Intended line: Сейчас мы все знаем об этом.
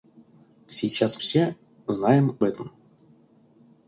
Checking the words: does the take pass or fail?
fail